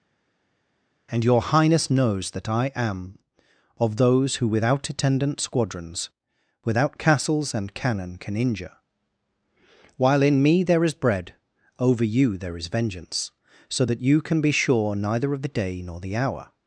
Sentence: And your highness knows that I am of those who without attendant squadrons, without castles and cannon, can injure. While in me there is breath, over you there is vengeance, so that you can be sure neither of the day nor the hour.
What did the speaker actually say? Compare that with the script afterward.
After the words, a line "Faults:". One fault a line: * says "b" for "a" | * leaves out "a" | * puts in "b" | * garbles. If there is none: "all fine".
And your highness knows that I am of those who without attendant squadrons, without castles and cannon, can injure. While in me there is bread, over you there is vengeance, so that you can be sure neither of the day nor the hour.
Faults:
* says "bread" for "breath"